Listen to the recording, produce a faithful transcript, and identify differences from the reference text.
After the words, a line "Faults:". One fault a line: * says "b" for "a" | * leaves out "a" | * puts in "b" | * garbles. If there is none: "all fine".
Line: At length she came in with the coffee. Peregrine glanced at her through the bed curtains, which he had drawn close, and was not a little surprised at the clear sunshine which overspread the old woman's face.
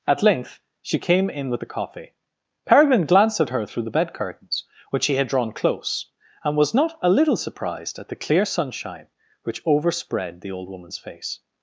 At length she came in with the coffee. Peregrine glanced at her through the bed curtains, which he had drawn close, and was not a little surprised at the clear sunshine which overspread the old woman's face.
Faults:
all fine